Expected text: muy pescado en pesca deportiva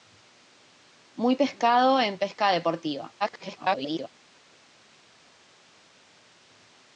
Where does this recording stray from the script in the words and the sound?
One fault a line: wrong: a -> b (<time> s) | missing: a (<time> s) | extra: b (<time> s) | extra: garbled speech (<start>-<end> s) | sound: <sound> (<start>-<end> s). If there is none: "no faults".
extra: garbled speech (3.2-4.1 s)